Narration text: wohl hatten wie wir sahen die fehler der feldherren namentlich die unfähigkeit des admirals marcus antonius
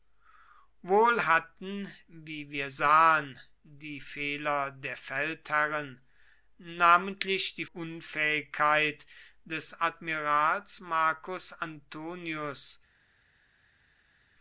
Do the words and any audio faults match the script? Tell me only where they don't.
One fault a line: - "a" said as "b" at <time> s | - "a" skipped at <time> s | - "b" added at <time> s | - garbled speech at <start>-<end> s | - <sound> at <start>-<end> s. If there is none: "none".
none